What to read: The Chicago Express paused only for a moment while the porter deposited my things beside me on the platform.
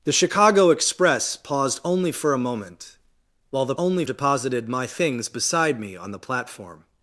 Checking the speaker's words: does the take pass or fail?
fail